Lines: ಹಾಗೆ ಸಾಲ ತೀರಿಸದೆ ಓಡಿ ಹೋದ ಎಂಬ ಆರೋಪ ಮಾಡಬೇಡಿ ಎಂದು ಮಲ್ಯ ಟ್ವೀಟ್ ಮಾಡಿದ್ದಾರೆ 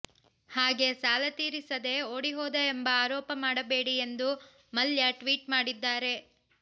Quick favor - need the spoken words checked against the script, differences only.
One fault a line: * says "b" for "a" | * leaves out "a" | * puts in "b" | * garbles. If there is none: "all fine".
all fine